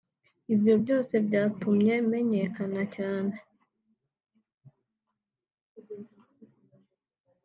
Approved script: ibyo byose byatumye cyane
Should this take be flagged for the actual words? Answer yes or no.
yes